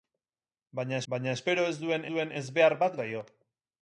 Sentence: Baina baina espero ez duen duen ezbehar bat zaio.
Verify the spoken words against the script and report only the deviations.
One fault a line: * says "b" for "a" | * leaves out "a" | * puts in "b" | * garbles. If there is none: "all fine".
all fine